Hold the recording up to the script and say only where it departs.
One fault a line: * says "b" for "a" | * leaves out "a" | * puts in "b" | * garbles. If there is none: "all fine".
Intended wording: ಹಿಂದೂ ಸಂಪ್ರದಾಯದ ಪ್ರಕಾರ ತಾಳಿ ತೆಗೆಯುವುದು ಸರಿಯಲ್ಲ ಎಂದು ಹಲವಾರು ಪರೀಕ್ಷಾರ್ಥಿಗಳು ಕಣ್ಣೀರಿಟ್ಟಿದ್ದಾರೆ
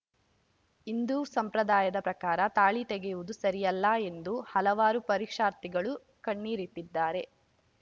all fine